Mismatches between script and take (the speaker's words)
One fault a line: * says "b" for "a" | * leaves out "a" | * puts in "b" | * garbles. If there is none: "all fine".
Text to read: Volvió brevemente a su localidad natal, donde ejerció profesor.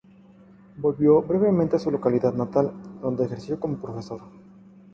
* puts in "como"